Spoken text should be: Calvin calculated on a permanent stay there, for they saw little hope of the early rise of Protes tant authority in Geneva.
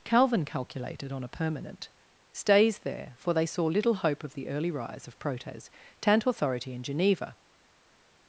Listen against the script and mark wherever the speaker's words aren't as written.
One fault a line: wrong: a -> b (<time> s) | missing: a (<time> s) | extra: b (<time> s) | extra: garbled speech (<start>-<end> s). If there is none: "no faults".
wrong: stay -> stays (2.3 s)